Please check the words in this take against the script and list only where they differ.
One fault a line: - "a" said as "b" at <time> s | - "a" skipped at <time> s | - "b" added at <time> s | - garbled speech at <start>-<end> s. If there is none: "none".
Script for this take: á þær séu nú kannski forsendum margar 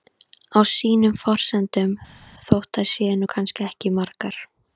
- "sínum forsendum þótt" added at 0.7 s
- "forsendum" said as "ekki" at 3.7 s